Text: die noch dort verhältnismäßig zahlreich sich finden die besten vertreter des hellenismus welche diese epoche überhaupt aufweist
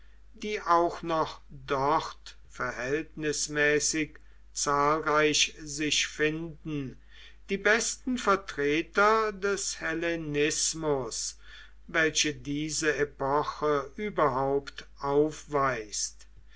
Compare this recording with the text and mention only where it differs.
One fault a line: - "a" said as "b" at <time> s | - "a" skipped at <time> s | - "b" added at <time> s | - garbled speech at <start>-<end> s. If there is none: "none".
- "auch" added at 0.6 s